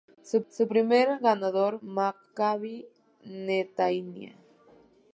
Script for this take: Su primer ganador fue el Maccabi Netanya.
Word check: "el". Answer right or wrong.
wrong